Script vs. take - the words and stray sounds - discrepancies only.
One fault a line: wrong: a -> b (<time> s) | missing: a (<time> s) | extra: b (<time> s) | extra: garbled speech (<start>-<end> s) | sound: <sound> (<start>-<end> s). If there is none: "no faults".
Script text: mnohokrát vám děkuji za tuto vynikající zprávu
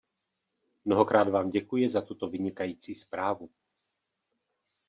no faults